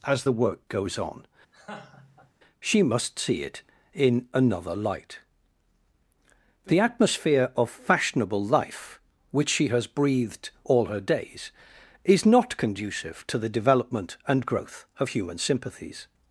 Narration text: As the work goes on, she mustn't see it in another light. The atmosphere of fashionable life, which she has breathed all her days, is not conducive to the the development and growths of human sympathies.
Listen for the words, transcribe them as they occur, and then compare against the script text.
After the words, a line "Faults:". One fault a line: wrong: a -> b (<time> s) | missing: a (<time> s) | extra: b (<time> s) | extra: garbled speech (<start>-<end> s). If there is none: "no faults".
As the work goes on, she must see it in another light. The atmosphere of fashionable life, which she has breathed all her days, is not conducive to the development and growth of human sympathies.
Faults:
wrong: mustn't -> must (2.8 s)
missing: the (13.5 s)
wrong: growths -> growth (14.5 s)